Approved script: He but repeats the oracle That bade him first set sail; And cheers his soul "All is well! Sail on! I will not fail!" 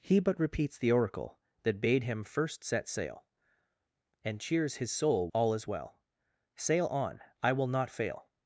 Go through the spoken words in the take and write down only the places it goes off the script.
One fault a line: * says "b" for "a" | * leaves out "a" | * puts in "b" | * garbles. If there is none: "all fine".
all fine